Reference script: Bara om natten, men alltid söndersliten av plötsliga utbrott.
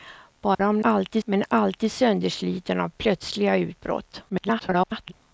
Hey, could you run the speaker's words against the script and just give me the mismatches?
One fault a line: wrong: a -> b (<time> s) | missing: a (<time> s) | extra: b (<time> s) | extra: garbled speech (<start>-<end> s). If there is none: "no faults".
wrong: natten -> alltid (0.8 s)
extra: garbled speech (4.3-5.1 s)